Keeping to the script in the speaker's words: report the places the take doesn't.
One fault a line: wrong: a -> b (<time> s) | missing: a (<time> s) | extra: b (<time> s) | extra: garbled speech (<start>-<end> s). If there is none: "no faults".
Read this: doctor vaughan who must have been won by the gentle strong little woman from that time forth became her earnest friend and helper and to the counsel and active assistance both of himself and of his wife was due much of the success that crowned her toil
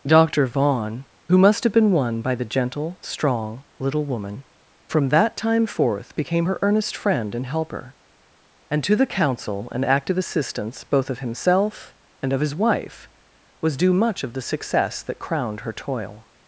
no faults